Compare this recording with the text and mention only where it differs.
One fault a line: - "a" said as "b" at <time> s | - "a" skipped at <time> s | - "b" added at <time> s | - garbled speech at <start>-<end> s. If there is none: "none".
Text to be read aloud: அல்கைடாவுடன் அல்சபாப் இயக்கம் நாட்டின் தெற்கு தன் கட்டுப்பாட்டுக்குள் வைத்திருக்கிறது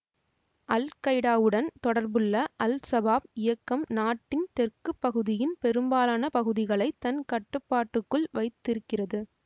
- "தொடர்புள்ள" added at 1.8 s
- "பகுதியின் பெரும்பாலான பகுதிகளை" added at 5.0 s